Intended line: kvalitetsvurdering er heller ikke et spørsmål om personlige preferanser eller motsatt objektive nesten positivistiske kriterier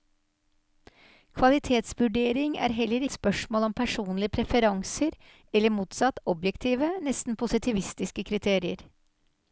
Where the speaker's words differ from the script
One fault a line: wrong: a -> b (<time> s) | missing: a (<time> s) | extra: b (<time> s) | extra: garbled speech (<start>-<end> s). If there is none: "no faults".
missing: ikke (3.0 s)